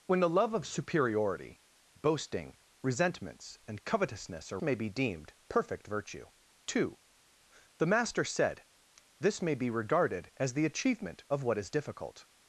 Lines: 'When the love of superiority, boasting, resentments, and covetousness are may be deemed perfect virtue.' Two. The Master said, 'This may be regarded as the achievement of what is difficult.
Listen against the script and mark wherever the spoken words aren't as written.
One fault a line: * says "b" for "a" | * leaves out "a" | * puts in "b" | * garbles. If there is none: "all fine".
all fine